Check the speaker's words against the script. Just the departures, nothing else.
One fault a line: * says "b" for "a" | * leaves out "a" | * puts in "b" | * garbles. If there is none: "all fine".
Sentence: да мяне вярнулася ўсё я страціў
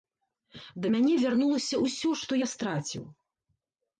* puts in "што"